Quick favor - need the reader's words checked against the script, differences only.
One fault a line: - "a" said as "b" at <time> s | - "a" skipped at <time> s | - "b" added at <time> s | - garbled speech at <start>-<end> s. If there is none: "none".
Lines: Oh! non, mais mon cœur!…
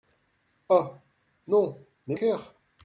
- "mon" skipped at 2.1 s